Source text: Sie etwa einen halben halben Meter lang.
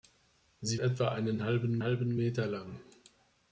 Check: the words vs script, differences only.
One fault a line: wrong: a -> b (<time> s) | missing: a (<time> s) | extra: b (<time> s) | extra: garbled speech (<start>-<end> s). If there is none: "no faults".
no faults